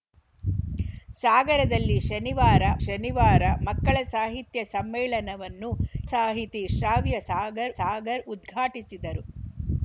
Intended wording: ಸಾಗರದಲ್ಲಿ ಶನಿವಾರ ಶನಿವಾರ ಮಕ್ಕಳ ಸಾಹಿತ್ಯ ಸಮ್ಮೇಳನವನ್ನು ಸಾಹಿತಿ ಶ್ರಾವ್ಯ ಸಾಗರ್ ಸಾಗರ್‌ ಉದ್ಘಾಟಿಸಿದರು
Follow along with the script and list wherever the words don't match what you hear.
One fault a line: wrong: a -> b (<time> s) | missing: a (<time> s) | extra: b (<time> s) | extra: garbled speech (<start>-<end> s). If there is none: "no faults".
no faults